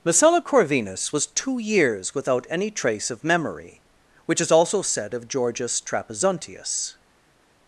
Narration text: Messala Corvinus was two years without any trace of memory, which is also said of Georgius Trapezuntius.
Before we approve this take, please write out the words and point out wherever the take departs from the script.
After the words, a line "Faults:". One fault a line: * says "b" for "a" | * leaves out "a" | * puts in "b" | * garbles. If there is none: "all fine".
Messala Corvinus was two years without any trace of memory, which is also said of Georgius Trapezuntius.
Faults:
all fine